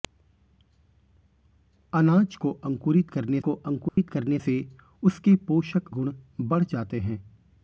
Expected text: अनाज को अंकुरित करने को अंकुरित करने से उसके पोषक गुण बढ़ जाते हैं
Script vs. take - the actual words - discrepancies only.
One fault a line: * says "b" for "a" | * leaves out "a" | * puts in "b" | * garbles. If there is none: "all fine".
all fine